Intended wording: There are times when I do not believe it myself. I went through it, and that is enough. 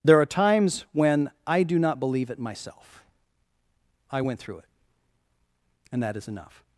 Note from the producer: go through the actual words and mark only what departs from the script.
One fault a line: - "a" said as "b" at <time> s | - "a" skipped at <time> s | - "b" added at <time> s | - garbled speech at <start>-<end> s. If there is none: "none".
none